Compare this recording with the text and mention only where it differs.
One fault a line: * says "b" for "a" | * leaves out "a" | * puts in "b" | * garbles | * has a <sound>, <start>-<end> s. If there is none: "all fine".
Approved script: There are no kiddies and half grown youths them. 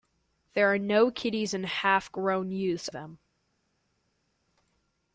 all fine